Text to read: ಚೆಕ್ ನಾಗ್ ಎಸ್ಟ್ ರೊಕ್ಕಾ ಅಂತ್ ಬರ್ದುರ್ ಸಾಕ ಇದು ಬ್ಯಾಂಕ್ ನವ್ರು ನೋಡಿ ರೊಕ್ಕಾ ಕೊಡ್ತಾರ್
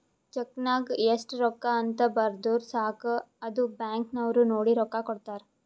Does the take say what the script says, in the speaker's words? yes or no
no